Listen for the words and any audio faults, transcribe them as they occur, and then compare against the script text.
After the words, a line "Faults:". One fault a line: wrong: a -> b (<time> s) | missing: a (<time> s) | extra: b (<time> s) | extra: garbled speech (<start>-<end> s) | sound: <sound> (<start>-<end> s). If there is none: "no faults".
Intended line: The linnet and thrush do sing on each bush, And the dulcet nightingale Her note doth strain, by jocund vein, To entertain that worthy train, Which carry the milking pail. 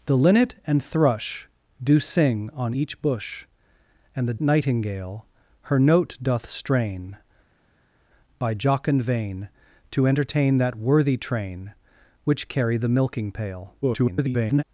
The linnet and thrush do sing on each bush, And the nightingale Her note doth strain, by jocund vein, To entertain that worthy train, Which carry the milking pail. [garbled]
Faults:
missing: dulcet (4.3 s)
extra: garbled speech (13.8-14.6 s)